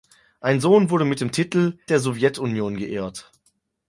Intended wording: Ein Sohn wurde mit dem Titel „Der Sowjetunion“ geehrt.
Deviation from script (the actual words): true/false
false